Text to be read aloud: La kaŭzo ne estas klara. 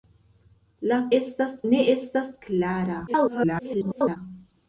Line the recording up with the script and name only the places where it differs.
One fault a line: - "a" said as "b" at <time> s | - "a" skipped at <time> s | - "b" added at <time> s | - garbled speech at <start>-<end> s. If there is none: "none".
- "kaŭzo" said as "estas" at 1.2 s
- garbled speech at 3.1-4.2 s